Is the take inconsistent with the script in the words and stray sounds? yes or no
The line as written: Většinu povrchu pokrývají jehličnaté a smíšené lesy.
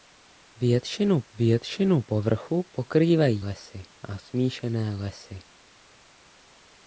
yes